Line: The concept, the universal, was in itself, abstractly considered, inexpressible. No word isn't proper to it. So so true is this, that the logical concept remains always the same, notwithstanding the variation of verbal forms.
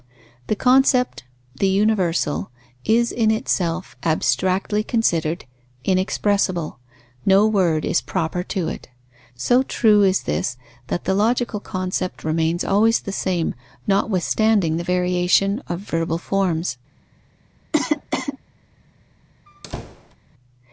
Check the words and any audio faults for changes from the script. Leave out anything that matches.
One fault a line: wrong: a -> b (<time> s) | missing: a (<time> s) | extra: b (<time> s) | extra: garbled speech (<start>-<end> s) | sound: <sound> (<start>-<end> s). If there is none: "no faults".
wrong: was -> is (2.8 s)
wrong: isn't -> is (7.8 s)
missing: so (9.6 s)
sound: cough (17.7-18.4 s)
sound: squeak (19.5-20.2 s)